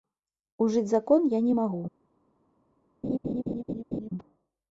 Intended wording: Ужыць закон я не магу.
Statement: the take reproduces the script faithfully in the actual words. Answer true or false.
true